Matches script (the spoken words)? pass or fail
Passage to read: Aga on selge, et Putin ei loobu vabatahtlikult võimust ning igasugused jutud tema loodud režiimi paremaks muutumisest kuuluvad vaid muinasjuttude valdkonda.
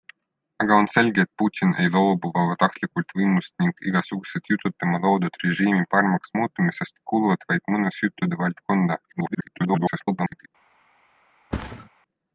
fail